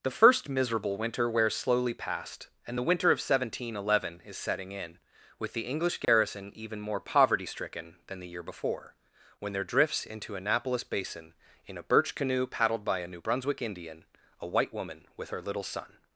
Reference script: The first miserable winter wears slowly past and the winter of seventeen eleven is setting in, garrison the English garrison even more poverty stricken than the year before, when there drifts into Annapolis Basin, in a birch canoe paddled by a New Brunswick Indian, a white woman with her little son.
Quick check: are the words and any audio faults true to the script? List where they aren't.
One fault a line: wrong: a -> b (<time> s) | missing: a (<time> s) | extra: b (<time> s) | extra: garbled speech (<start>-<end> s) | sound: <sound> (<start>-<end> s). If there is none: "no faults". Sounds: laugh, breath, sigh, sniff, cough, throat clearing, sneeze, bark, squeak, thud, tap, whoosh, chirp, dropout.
wrong: garrison -> with (5.4 s)
sound: dropout (6.0-6.1 s)